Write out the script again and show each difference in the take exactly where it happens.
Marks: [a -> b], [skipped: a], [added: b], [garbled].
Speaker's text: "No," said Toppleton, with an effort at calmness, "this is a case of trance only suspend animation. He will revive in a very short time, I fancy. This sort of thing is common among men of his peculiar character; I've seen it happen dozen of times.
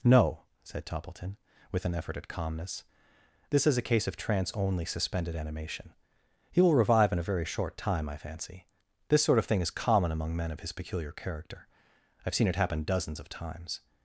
"No," said Toppleton, with an effort at calmness, "this is a case of trance only [suspend -> suspended] animation. He will revive in a very short time, I fancy. This sort of thing is common among men of his peculiar character; I've seen it happen [dozen -> dozens] of times.